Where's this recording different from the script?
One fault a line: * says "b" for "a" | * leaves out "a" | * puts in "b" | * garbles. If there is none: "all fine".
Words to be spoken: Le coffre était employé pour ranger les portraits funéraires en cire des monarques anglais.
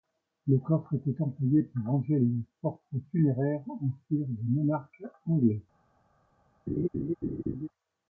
all fine